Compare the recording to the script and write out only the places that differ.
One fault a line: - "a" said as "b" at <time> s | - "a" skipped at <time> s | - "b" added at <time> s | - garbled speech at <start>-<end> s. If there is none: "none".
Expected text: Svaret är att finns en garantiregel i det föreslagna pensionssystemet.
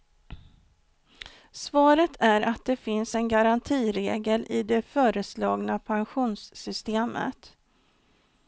- "det" added at 2.6 s